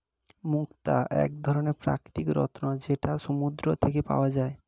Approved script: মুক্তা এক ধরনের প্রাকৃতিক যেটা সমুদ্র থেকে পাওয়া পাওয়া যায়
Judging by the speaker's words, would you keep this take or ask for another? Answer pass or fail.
fail